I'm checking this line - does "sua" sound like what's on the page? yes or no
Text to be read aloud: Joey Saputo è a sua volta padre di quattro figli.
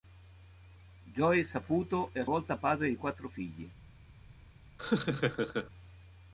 no